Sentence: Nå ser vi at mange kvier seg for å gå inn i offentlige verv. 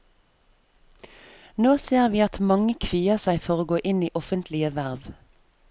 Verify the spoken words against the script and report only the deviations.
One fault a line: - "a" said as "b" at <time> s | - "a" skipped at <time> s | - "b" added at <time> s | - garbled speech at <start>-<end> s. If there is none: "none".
none